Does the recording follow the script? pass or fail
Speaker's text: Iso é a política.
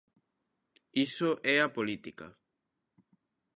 pass